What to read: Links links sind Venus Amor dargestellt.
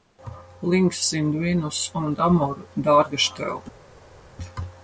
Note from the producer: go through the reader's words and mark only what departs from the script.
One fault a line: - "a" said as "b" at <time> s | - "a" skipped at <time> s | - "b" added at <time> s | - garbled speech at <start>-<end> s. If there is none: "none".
- "links" skipped at 1.1 s
- "und" added at 1.9 s